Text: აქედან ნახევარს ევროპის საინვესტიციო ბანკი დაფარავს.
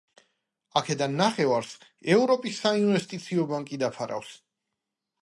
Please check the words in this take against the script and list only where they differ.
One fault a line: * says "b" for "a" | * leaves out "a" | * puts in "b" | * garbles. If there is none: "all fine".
all fine